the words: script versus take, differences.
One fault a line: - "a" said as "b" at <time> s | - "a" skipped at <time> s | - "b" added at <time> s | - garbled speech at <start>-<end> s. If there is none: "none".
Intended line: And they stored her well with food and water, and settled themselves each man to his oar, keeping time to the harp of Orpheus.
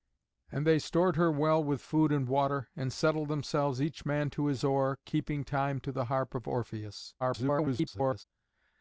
- garbled speech at 7.2-8.2 s